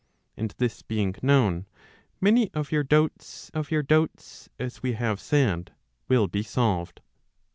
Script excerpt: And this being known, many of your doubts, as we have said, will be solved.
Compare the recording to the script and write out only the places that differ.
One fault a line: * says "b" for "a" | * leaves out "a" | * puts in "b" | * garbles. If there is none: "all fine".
* puts in "of your doubts"